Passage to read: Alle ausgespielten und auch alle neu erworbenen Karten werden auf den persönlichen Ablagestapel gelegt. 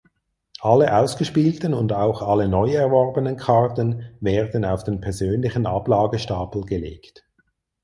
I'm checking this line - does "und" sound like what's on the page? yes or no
yes